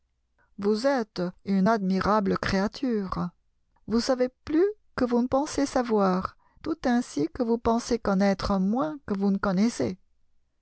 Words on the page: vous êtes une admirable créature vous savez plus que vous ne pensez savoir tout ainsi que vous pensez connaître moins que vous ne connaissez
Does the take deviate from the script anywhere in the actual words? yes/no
no